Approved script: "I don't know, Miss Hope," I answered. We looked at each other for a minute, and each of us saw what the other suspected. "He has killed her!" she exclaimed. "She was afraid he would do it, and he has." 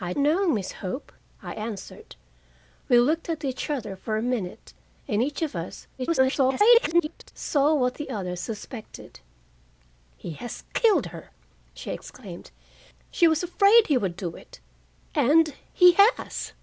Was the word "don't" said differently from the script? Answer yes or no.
yes